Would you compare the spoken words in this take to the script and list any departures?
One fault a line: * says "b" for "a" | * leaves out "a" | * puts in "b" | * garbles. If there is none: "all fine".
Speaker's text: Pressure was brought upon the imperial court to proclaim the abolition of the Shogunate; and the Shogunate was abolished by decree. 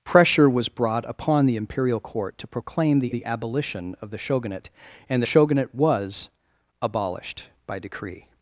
* puts in "the"